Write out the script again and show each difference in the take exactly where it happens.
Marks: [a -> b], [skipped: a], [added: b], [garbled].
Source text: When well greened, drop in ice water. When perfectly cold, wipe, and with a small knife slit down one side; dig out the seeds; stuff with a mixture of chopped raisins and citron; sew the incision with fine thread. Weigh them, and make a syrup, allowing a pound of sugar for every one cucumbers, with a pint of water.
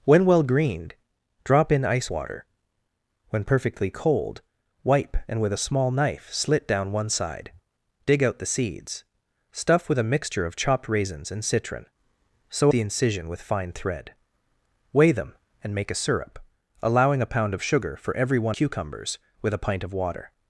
When well greened, drop in ice water. When perfectly cold, wipe, and with a small knife slit down one side; dig out the seeds; stuff with a mixture of chopped raisins and citron; sew the incision with fine thread. Weigh them, and make a syrup, allowing a pound of sugar for every one cucumbers, with a pint of water.